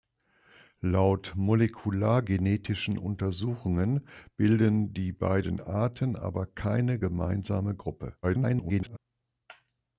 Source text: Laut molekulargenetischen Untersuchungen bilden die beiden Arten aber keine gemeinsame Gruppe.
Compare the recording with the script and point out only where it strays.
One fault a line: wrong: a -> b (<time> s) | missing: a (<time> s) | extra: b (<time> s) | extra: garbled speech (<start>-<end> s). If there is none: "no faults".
extra: garbled speech (8.2-9.0 s)